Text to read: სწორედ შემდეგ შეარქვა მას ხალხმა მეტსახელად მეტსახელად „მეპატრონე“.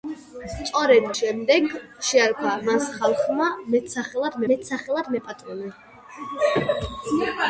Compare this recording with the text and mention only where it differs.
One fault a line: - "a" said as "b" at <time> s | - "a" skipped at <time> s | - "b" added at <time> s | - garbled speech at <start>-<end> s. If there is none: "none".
none